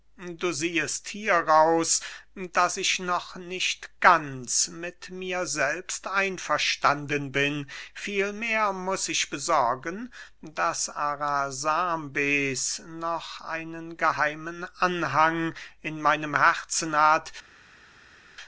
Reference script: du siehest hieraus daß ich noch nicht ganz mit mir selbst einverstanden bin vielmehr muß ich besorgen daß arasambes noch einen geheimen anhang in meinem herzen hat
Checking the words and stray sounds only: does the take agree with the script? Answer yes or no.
yes